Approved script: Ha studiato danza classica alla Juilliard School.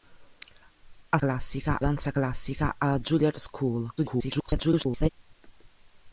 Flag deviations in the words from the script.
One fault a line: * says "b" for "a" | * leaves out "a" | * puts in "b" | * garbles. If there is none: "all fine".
* says "classica" for "studiato"
* garbles